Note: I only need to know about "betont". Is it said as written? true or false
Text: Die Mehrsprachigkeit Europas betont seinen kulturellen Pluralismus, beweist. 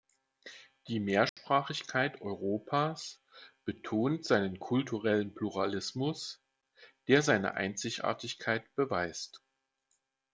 true